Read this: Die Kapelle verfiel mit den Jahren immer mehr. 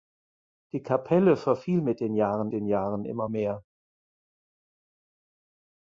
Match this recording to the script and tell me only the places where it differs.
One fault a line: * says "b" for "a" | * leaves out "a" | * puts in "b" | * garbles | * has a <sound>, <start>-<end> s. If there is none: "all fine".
* puts in "den Jahren"